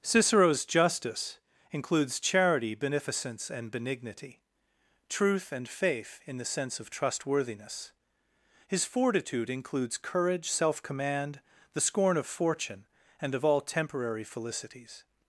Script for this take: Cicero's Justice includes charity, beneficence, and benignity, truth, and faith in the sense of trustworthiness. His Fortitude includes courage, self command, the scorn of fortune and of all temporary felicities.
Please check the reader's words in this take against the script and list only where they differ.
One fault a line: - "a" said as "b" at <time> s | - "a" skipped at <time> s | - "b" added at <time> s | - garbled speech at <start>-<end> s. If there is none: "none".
none